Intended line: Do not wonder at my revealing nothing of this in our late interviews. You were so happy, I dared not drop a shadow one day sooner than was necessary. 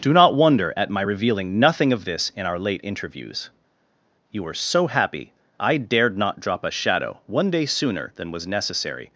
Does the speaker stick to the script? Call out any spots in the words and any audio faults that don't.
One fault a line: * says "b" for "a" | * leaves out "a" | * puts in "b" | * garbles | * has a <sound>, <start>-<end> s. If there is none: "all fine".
all fine